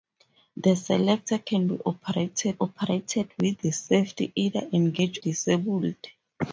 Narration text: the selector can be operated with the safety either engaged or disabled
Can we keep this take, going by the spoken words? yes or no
no